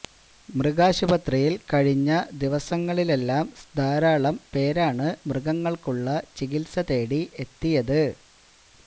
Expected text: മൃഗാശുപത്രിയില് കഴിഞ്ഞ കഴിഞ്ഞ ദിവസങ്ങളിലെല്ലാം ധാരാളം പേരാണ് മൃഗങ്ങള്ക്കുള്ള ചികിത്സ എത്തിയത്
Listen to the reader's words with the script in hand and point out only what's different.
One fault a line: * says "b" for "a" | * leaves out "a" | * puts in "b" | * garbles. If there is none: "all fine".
* leaves out "കഴിഞ്ഞ"
* puts in "തേടി"